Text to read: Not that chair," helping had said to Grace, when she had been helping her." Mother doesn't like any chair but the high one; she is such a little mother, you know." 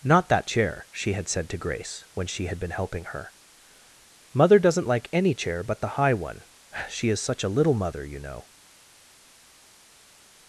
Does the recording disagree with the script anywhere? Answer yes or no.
yes